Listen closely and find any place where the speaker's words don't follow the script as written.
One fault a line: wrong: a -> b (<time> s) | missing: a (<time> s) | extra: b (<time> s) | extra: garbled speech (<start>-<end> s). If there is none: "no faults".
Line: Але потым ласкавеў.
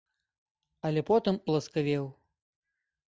no faults